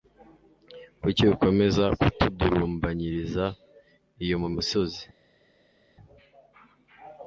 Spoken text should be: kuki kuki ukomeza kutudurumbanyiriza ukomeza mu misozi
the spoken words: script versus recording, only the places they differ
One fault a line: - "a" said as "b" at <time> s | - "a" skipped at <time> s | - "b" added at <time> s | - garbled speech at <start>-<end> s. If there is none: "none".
- "kuki" skipped at 1.2 s
- "ukomeza" said as "iyo" at 4.2 s